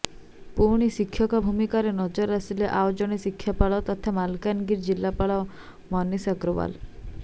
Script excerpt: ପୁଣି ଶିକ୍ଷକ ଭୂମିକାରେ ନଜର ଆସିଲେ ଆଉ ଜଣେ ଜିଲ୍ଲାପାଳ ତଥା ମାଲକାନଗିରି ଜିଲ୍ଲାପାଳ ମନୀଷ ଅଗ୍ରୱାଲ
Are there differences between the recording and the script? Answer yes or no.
no